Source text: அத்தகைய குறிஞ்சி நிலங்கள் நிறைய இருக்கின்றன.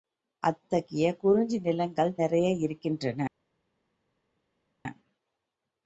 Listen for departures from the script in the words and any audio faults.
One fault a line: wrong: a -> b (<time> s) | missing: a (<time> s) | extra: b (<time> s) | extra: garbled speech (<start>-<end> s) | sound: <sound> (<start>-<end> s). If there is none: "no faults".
no faults